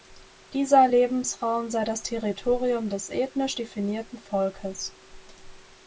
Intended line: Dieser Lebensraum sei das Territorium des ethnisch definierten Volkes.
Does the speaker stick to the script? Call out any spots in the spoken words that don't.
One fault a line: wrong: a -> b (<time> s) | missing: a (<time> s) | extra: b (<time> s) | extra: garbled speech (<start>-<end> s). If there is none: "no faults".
no faults